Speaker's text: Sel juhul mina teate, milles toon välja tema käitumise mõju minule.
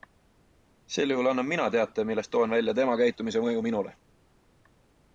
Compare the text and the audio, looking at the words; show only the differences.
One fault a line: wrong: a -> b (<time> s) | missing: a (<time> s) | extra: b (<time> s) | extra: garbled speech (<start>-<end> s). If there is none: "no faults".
extra: annan (1.3 s)